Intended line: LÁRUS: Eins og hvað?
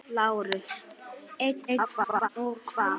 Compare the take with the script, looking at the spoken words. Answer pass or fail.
fail